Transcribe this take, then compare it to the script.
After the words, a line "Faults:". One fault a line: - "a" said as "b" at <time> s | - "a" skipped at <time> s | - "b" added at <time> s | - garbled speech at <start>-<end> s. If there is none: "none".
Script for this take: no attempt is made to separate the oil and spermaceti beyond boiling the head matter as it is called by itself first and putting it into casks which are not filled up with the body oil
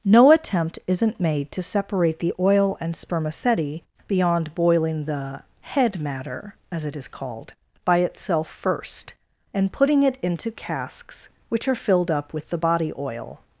no attempt isn't made to separate the oil and spermaceti beyond boiling the head matter as it is called by itself first and putting it into casks which are filled up with the body oil
Faults:
- "is" said as "isn't" at 0.9 s
- "not" skipped at 11.8 s